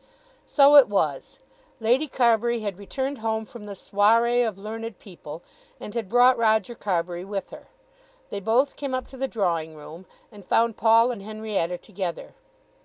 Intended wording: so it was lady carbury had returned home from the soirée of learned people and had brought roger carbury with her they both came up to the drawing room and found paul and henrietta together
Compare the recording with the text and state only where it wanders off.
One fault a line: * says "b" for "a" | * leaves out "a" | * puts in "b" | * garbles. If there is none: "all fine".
all fine